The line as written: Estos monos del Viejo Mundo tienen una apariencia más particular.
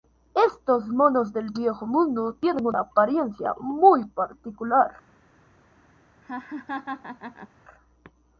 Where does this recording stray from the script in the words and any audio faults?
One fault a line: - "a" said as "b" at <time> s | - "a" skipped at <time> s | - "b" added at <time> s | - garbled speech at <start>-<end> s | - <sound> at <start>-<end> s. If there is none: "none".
- "más" said as "muy" at 3.6 s
- laugh at 6.2-7.5 s